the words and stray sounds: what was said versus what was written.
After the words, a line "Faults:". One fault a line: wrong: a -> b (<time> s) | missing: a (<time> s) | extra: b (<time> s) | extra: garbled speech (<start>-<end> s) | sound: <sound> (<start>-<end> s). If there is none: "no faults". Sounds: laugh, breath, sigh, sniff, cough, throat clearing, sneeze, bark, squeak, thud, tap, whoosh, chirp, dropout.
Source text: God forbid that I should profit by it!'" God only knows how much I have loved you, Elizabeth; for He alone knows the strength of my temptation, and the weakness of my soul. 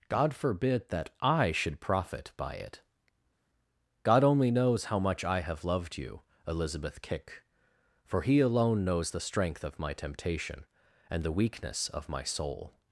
God forbid that I should profit by it!'" God only knows how much I have loved you, Elizabeth; kick for He alone knows the strength of my temptation, and the weakness of my soul.
Faults:
extra: kick (7.0 s)